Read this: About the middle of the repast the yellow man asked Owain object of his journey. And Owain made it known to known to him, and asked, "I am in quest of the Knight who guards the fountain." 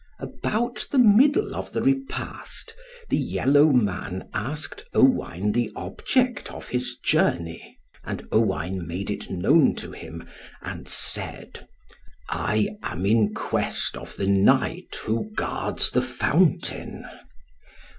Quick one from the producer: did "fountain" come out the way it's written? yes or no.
yes